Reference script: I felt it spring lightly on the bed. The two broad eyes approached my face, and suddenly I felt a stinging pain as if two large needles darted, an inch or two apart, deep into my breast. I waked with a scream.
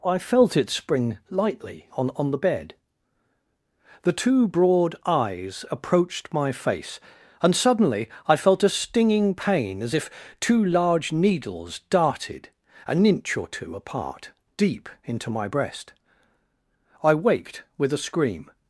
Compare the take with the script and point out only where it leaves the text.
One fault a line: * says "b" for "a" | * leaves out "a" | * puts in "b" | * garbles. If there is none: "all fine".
* puts in "on"